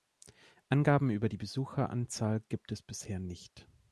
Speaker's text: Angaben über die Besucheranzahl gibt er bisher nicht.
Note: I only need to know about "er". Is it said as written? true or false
false